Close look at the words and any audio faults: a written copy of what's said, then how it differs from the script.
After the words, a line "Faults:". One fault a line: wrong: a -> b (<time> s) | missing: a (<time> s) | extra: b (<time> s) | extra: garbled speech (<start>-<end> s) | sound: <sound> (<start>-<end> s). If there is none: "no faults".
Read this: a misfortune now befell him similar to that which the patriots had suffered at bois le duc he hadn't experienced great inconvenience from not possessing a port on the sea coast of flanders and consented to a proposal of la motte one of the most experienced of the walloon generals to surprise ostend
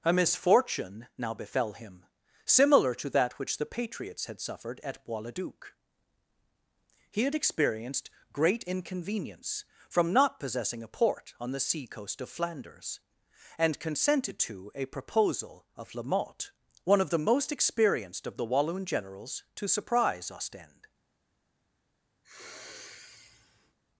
a misfortune now befell him similar to that which the patriots had suffered at bois le duc he had experienced great inconvenience from not possessing a port on the sea coast of flanders and consented to a proposal of la motte one of the most experienced of the walloon generals to surprise ostend
Faults:
wrong: hadn't -> had (7.2 s)
sound: sniff (22.2-23.8 s)